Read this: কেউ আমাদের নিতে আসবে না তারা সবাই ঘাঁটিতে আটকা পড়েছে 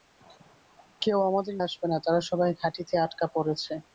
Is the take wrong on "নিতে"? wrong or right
wrong